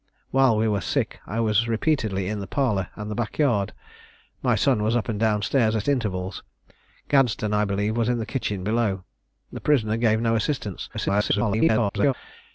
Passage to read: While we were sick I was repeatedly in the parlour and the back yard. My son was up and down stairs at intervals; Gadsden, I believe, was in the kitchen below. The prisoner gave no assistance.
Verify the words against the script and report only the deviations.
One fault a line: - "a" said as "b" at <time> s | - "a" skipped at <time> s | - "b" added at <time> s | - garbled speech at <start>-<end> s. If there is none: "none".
- garbled speech at 10.9-12.1 s